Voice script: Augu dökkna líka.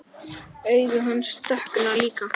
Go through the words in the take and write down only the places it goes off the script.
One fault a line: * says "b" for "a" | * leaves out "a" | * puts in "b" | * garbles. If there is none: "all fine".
* puts in "hans"